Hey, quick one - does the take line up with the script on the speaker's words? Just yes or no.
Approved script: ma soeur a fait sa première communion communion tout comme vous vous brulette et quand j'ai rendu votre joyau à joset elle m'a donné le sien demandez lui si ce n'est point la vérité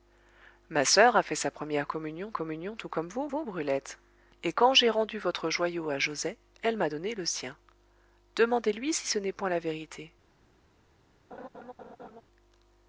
yes